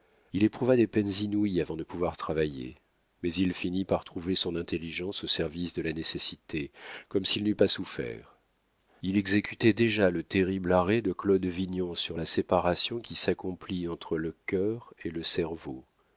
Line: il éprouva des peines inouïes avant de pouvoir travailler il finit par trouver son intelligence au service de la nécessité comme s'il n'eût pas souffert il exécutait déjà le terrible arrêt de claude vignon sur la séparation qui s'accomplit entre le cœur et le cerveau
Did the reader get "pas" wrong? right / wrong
right